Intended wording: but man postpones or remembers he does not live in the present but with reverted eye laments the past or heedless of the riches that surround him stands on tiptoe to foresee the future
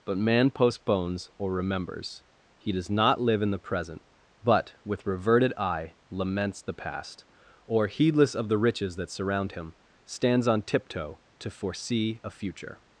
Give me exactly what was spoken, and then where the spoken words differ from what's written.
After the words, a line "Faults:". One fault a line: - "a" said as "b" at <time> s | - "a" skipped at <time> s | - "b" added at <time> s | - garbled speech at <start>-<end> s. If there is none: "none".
but man postpones or remembers he does not live in the present but with reverted eye laments the past or heedless of the riches that surround him stands on tiptoe to foresee a future
Faults:
- "the" said as "a" at 12.2 s